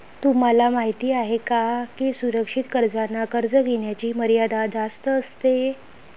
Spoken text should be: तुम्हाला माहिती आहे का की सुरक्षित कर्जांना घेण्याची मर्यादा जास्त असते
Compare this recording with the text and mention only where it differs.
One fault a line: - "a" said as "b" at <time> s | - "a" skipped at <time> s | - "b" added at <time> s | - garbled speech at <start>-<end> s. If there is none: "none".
- "कर्ज" added at 3.3 s